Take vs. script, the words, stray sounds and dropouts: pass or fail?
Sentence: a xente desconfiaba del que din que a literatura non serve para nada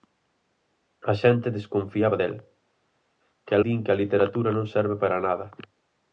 pass